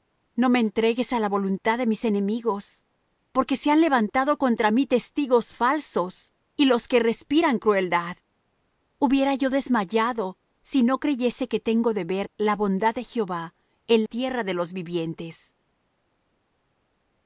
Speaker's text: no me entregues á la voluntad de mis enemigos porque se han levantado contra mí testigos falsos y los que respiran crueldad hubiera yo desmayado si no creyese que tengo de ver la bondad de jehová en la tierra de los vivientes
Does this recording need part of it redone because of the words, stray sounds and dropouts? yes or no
yes